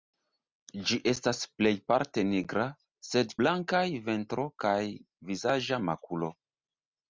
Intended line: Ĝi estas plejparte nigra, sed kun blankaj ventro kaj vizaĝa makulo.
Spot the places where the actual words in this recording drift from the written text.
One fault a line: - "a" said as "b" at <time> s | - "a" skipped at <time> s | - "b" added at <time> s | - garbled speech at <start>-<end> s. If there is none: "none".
- "kun" skipped at 3.4 s